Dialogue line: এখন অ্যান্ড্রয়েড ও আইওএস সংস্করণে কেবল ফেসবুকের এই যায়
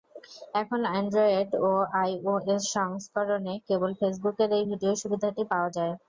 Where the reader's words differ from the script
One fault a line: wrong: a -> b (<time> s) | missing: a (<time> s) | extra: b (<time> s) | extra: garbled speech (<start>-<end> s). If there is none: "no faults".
extra: ভিডিও সুবিধাটি পাওয়া (4.7 s)